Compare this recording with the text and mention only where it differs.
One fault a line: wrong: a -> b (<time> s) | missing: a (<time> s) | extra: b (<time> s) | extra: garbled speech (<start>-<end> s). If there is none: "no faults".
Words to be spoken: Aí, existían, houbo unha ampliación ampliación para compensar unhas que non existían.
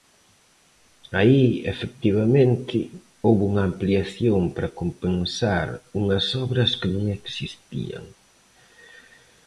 wrong: existían -> efectivamente (1.7 s)
missing: ampliación (4.4 s)
extra: obras (6.5 s)